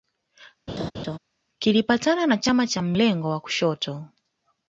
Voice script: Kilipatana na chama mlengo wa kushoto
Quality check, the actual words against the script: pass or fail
fail